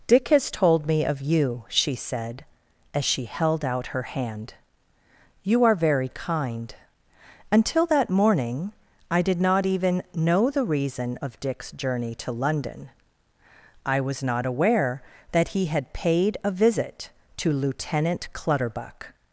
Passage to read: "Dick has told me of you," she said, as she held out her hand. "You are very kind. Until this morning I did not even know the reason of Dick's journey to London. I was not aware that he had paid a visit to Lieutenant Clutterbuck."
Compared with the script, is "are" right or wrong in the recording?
right